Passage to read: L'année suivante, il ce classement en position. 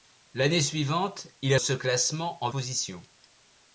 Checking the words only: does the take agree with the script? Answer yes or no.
yes